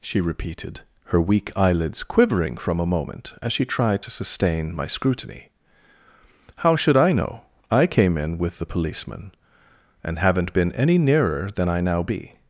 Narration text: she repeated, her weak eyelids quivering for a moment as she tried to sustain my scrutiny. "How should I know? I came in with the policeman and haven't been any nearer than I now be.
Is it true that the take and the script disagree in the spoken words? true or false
true